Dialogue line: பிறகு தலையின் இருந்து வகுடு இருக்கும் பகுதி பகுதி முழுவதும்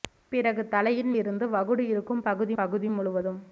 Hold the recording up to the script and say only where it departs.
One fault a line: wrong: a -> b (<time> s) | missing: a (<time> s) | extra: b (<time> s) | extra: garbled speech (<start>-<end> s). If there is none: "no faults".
no faults